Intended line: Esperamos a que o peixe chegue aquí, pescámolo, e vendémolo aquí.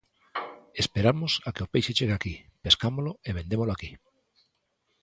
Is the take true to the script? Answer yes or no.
yes